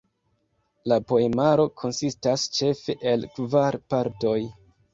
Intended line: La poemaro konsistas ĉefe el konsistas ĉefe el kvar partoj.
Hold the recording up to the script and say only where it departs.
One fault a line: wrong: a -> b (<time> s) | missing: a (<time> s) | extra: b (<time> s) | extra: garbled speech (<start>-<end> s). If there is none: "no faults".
missing: konsistas ĉefe el (3.3 s)